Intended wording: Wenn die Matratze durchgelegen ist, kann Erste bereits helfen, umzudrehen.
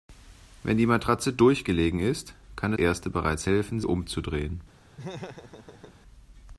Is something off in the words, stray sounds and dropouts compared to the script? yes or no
yes